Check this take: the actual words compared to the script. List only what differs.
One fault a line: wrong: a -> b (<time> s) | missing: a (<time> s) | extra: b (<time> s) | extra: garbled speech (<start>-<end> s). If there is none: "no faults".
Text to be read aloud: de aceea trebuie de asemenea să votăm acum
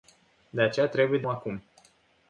missing: asemenea să votăm (1.3 s)